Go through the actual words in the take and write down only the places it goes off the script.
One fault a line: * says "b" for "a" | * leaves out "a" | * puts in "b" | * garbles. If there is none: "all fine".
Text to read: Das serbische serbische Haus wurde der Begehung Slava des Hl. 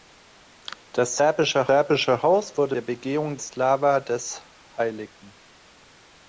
all fine